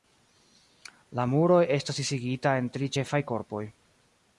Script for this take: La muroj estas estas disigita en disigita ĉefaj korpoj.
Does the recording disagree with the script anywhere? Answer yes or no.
yes